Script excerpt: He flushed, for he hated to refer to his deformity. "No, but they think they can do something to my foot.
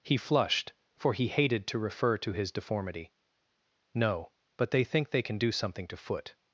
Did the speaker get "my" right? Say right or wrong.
wrong